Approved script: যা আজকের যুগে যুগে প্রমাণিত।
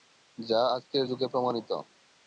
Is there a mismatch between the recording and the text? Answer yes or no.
yes